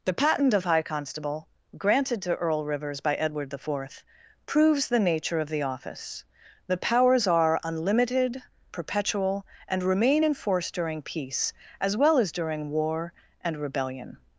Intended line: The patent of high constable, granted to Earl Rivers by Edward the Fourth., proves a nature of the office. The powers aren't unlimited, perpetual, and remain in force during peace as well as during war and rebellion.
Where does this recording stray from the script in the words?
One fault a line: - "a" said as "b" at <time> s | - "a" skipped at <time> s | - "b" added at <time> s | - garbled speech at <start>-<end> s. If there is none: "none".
- "a" said as "the" at 4.9 s
- "aren't" said as "are" at 7.3 s